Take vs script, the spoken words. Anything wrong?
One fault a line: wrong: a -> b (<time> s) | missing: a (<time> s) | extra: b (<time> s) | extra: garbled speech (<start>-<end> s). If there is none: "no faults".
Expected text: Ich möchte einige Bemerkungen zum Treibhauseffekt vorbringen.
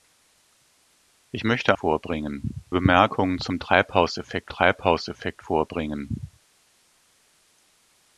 wrong: einige -> vorbringen (1.8 s)
extra: Treibhauseffekt (4.5 s)